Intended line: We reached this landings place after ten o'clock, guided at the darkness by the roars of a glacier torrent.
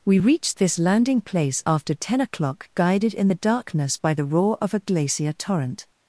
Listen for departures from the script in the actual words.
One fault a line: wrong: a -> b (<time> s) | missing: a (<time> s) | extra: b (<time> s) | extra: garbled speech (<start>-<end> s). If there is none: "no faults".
wrong: landings -> landing (0.8 s)
wrong: at -> in (3.1 s)
wrong: roars -> roar (4.2 s)